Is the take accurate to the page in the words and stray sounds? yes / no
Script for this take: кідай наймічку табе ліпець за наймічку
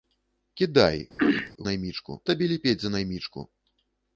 no